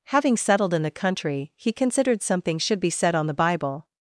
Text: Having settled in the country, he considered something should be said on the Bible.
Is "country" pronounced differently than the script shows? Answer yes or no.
no